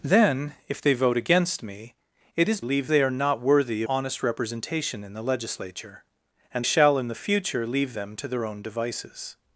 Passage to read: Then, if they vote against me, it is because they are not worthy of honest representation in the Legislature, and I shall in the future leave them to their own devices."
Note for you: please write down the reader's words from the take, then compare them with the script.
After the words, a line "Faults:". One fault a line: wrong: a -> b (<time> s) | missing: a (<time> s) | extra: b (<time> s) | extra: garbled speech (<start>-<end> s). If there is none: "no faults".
Then, if they vote against me, it is leave they are not worthy honest representation in the Legislature, and shall in the future leave them to their own devices."
Faults:
wrong: because -> leave (2.6 s)
missing: of (3.8 s)
missing: I (6.7 s)